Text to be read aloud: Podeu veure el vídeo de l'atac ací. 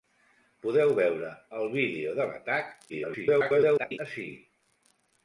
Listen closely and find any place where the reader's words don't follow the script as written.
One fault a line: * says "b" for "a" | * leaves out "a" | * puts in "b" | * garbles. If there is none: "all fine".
* garbles